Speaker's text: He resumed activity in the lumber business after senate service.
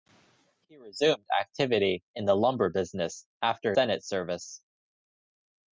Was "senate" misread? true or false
false